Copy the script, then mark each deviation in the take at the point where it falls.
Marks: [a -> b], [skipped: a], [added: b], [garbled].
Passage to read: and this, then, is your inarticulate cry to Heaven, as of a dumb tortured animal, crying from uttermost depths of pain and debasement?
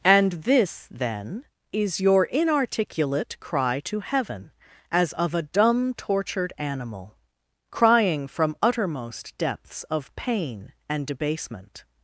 and this, then, is your inarticulate cry to Heaven, as of a dumb tortured animal, crying from uttermost depths of pain and debasement?